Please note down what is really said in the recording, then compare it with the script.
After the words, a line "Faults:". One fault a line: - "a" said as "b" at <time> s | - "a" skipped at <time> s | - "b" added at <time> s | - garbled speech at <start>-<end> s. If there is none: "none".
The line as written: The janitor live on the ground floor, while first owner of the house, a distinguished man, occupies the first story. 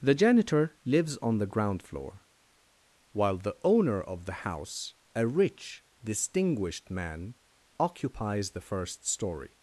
The janitor lives on the ground floor, while the owner of the house, a rich, distinguished man, occupies the first story.
Faults:
- "live" said as "lives" at 0.8 s
- "first" said as "the" at 3.4 s
- "rich" added at 5.3 s